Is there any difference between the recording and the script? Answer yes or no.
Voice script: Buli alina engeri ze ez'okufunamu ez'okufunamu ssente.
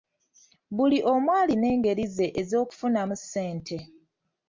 yes